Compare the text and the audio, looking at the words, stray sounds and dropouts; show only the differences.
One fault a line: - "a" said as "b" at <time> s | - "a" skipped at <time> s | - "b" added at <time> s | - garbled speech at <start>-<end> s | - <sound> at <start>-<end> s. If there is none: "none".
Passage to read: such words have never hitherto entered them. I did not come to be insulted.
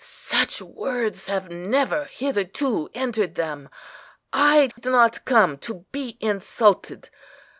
- dropout at 4.7-4.8 s